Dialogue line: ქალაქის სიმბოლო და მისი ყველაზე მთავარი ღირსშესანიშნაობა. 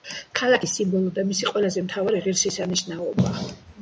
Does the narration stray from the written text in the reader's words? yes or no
no